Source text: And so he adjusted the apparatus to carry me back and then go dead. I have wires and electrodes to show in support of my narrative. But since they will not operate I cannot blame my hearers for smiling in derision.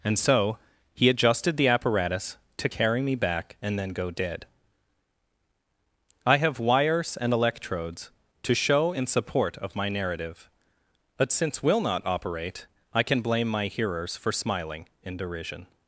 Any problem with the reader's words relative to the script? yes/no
yes